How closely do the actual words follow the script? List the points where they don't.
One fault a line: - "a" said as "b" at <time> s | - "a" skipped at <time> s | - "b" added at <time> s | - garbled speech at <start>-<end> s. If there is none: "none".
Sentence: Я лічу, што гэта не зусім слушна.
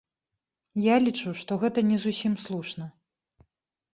none